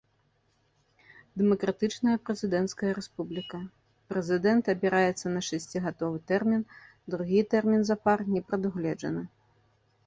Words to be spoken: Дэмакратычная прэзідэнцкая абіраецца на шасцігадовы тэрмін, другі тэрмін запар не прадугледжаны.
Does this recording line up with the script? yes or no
no